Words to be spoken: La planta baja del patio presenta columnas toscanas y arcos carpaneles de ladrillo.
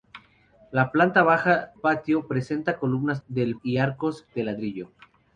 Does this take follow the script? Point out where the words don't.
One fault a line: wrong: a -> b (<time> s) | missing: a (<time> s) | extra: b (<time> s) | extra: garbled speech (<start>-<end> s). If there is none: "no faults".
missing: del (1.7 s)
wrong: toscanas -> del (3.3 s)
missing: carpaneles (4.3 s)